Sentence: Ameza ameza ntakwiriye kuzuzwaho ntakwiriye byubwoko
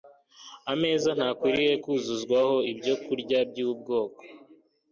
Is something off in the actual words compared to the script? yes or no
yes